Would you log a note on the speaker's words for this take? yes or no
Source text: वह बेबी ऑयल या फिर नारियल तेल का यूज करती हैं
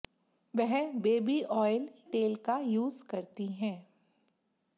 yes